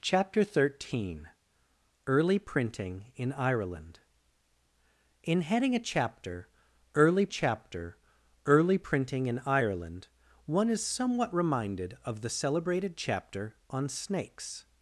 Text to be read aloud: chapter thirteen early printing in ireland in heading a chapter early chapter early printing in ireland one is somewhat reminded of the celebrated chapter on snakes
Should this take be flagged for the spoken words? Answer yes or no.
no